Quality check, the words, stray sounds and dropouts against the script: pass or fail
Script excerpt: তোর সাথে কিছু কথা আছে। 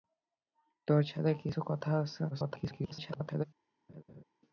fail